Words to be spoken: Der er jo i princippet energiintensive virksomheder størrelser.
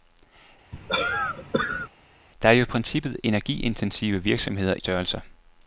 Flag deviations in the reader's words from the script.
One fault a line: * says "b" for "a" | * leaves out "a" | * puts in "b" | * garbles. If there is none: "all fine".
all fine